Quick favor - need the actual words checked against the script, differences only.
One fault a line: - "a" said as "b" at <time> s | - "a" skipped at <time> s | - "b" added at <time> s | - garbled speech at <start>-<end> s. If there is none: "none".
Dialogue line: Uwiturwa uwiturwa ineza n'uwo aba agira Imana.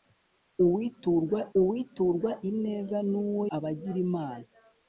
none